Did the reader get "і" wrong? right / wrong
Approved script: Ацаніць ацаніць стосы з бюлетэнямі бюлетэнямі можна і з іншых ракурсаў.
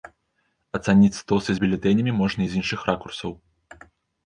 right